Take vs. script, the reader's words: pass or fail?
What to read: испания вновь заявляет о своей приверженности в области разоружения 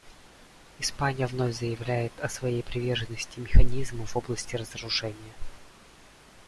fail